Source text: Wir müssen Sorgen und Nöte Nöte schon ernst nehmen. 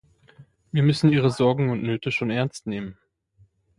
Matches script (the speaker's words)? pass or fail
fail